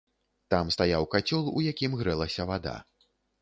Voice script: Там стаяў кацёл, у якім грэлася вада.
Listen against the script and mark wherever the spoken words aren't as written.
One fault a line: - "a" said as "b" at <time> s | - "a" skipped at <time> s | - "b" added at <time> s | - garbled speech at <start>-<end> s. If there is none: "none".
none